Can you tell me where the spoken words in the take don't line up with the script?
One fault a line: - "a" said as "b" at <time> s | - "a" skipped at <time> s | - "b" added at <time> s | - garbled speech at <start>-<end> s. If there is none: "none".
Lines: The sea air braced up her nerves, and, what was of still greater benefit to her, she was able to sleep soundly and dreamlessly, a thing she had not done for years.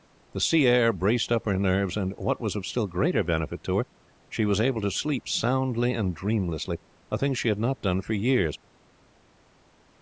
none